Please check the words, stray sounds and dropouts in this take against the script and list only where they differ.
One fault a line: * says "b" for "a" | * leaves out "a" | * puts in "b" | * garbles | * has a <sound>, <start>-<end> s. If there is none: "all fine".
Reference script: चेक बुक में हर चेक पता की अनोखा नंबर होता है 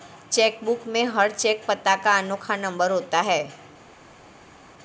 * says "का" for "की"